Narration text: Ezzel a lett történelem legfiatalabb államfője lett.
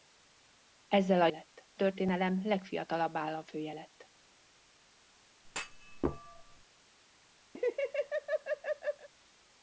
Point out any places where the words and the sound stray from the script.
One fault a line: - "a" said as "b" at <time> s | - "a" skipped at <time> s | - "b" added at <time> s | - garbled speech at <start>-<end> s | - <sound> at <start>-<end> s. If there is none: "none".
- thud at 5.4-6.6 s
- laugh at 7.5-9.1 s